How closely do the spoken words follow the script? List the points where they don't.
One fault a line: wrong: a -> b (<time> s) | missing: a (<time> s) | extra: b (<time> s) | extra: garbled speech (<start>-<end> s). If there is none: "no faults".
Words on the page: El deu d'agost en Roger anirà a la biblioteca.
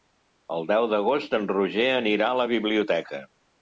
no faults